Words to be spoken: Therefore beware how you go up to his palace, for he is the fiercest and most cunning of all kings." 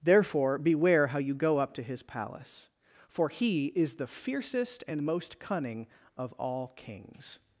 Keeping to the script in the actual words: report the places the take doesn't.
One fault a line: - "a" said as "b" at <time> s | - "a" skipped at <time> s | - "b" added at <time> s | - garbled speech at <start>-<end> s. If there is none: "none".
none